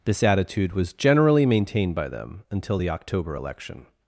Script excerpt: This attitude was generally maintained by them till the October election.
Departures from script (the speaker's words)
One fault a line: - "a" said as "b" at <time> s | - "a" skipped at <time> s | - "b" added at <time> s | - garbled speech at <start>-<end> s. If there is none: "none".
- "till" said as "until" at 2.5 s